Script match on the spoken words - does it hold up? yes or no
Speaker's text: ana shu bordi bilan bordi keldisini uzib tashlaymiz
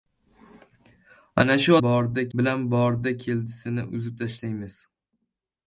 yes